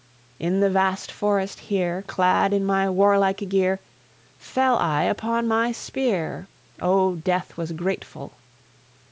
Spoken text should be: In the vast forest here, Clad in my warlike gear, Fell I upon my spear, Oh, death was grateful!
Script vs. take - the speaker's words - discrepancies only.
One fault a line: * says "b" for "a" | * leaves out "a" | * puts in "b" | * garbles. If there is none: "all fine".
all fine